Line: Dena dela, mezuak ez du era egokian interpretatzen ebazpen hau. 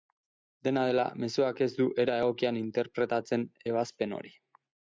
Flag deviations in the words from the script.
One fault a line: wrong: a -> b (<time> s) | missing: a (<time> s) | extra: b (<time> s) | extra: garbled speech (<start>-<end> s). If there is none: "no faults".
wrong: hau -> hori (4.2 s)